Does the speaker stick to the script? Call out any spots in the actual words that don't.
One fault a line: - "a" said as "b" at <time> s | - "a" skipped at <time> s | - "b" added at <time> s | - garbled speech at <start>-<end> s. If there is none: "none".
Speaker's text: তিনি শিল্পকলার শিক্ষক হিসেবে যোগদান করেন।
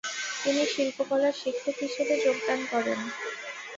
none